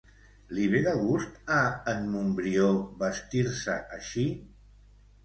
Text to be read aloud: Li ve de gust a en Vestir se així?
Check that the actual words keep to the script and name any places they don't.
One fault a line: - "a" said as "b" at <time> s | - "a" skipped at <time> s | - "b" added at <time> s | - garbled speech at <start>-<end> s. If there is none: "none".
- "Montbrió" added at 2.1 s